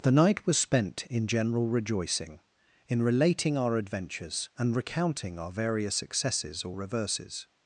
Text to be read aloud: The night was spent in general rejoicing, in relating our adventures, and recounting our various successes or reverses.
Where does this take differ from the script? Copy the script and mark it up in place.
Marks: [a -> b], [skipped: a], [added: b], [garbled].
The night was spent in general rejoicing, in relating our adventures, and recounting our various successes or reverses.